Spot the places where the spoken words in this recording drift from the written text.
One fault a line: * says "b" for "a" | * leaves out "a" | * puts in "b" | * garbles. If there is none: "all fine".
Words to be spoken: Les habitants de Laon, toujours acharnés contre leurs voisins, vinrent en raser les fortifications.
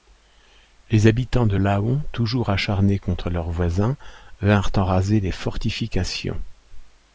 all fine